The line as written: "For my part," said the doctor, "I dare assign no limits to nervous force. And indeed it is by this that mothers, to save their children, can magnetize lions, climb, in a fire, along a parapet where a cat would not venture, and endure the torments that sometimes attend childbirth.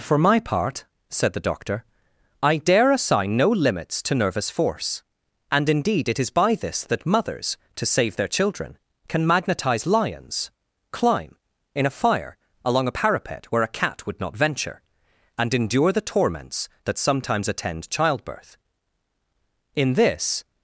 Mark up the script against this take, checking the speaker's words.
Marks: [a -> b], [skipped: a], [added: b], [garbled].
"For my part," said the doctor, "I dare assign no limits to nervous force. And indeed it is by this that mothers, to save their children, can magnetize lions, climb, in a fire, along a parapet where a cat would not venture, and endure the torments that sometimes attend childbirth. [added: In this]